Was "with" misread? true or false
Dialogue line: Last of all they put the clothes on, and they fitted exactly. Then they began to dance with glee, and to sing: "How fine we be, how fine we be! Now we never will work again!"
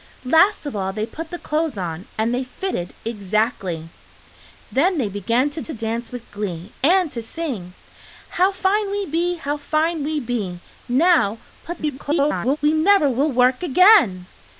false